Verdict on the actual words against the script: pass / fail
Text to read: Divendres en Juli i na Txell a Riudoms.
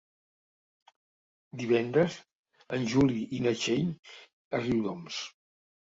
pass